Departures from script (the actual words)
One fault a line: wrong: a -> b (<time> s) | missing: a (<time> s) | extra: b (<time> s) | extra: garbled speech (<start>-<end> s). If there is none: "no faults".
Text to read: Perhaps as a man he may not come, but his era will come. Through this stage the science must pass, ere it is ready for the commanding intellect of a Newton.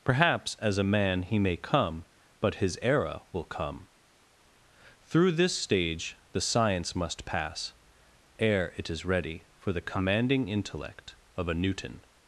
missing: not (1.6 s)